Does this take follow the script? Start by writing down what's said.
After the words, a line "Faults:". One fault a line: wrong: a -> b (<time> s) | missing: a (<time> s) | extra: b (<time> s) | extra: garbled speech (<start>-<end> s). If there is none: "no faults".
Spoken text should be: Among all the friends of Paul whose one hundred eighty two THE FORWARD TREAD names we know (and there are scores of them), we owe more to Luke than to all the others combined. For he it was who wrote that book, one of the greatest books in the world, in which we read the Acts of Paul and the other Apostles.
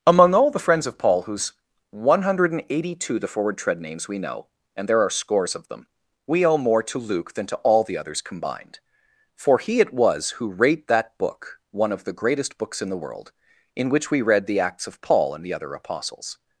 Among all the friends of Paul whose one hundred eighty two THE FORWARD TREAD names we know (and there are scores of them), we owe more to Luke than to all the others combined. For he it was who rate that book, one of the greatest books in the world, in which we read the Acts of Paul and the other Apostles.
Faults:
wrong: wrote -> rate (10.5 s)